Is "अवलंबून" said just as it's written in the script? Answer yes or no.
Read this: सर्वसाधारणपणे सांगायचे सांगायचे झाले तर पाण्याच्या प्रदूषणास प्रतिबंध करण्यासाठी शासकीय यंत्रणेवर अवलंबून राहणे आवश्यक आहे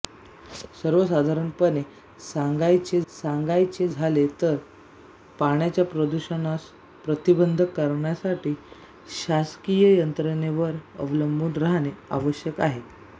yes